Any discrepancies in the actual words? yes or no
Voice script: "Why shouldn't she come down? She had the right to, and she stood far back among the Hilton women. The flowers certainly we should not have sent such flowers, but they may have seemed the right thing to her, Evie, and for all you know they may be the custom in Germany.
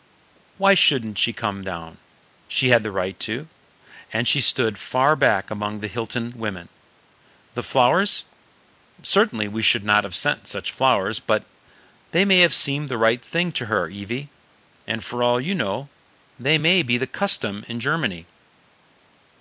no